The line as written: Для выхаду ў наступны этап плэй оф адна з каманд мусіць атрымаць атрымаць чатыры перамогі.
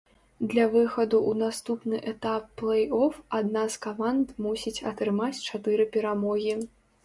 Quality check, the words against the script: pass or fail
fail